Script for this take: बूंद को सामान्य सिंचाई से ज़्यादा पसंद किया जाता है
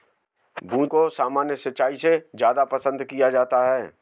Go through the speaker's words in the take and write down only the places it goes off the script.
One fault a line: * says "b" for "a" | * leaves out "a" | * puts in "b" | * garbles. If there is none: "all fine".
all fine